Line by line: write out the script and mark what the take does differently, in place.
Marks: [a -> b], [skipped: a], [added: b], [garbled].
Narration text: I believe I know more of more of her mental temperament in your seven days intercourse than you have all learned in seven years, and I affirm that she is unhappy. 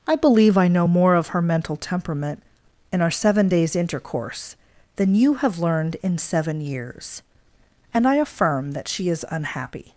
I believe I know more of [skipped: more of] her mental temperament in [your -> our] seven days intercourse than you have [skipped: all] learned in seven years, and I affirm that she is unhappy.